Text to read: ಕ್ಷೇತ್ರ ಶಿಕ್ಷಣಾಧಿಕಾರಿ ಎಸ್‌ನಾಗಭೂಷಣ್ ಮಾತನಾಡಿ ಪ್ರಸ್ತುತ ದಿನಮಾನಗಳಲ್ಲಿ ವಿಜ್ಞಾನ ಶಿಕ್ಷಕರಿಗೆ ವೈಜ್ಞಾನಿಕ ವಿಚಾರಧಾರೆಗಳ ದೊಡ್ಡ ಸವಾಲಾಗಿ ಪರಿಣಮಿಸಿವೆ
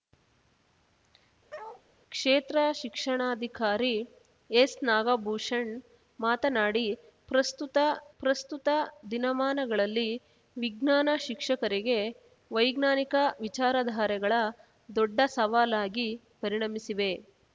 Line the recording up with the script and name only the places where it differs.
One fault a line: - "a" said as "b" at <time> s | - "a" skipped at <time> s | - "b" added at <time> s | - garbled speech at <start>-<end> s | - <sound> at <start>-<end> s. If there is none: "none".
- bark at 1.5-1.8 s
- "ಪ್ರಸ್ತುತ" added at 8.2 s